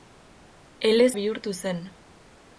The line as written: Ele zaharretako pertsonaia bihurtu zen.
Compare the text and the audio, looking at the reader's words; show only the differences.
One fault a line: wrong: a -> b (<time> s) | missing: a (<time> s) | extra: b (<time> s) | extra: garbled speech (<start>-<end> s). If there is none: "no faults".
missing: zaharretako pertsonaia (1.1 s)